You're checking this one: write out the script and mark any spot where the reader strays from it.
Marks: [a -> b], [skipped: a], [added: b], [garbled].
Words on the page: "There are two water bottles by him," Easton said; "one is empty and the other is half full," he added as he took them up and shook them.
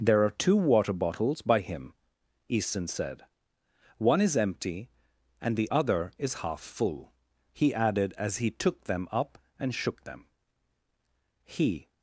"There are two water bottles by him," Easton said; "one is empty and the other is half full," he added as he took them up and shook them. [added: He]